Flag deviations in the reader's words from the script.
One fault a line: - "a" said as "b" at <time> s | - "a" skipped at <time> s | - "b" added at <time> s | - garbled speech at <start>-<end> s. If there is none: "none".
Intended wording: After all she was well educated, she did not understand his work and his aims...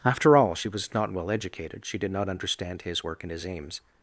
- "not" added at 0.9 s